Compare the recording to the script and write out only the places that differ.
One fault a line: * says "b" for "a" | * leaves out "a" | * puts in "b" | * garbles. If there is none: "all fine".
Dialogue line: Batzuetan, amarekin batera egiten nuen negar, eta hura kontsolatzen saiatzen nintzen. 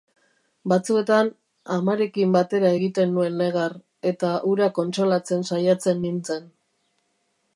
all fine